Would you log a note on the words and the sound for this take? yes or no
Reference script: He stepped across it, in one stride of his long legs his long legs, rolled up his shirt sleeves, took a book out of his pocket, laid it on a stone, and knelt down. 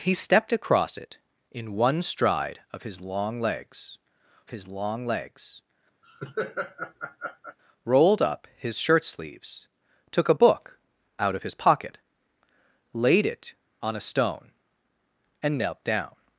yes